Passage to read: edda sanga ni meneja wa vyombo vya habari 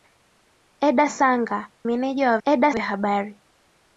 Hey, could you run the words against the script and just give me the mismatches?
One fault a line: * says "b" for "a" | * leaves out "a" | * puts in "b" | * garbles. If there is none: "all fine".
* leaves out "ni"
* says "edda" for "vyombo"